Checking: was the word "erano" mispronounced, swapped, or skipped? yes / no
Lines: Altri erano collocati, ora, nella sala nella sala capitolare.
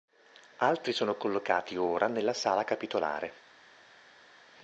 yes